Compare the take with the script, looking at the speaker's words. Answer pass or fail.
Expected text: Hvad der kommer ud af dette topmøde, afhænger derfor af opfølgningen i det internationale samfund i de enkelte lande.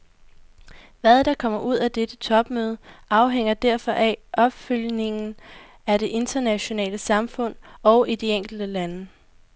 fail